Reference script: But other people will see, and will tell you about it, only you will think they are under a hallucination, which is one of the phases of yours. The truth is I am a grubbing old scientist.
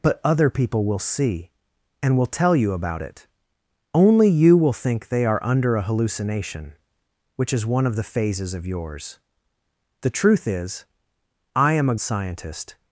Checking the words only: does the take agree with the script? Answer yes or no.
no